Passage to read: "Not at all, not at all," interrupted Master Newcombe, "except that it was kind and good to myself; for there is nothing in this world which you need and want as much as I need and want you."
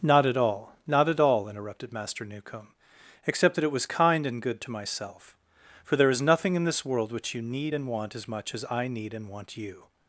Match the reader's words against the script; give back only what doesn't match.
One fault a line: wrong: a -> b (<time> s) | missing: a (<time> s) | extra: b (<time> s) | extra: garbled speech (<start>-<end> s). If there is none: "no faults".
no faults